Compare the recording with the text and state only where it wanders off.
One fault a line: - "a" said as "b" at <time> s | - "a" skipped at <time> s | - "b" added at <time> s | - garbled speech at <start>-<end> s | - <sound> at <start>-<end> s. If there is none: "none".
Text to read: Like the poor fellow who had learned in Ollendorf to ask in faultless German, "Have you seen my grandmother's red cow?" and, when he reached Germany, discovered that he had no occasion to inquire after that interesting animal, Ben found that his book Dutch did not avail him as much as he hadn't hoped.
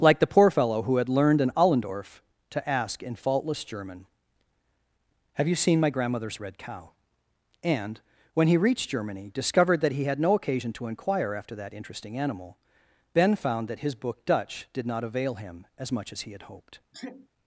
- "hadn't" said as "had" at 16.3 s
- sneeze at 16.9-17.3 s